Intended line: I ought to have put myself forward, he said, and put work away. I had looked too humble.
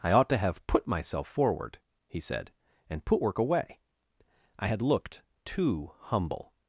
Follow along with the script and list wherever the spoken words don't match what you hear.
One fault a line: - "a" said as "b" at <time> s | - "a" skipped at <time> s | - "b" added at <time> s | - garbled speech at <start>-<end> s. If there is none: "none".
none